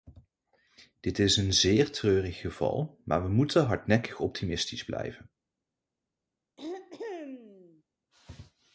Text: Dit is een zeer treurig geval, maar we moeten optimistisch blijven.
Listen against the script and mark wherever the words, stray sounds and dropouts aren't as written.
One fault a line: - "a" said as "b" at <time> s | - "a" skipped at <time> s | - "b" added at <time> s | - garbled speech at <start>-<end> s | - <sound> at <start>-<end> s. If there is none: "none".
- "hardnekkig" added at 3.6 s
- throat clearing at 6.6-7.8 s